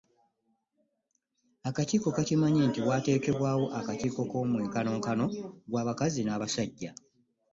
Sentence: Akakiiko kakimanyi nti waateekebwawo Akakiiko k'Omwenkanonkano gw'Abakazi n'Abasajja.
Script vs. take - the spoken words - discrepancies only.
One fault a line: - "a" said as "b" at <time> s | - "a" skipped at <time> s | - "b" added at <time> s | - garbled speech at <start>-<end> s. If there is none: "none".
none